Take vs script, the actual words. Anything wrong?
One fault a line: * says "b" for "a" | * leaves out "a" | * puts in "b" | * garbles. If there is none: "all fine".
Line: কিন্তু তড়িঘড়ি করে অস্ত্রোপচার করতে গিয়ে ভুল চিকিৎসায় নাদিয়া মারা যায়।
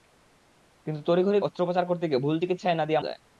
* leaves out "করে"
* leaves out "মারা"